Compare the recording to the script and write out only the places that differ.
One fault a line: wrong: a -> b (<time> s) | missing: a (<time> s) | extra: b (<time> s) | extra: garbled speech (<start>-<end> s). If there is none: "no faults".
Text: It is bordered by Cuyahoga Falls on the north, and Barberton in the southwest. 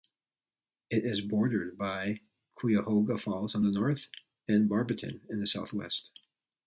no faults